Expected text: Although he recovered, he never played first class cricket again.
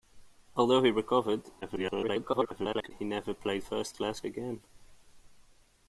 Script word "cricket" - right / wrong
wrong